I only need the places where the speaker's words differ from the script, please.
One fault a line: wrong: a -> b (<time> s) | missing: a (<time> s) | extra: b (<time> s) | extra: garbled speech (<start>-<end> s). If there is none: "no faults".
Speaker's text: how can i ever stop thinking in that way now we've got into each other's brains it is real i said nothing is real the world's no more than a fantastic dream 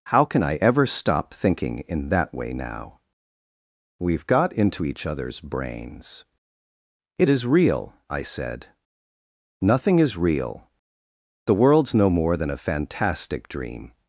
no faults